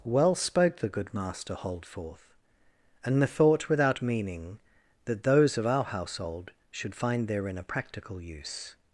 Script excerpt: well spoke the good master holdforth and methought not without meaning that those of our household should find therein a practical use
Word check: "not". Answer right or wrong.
wrong